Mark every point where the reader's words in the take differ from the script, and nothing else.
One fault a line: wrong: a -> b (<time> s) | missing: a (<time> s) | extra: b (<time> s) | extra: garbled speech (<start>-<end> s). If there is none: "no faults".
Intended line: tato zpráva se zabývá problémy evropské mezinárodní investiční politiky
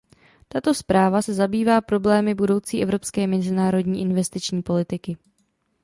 extra: budoucí (2.3 s)